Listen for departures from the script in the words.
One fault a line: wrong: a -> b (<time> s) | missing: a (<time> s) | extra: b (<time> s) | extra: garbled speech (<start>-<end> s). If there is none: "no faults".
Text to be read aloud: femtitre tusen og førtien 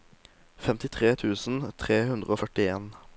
extra: tre hundre (1.8 s)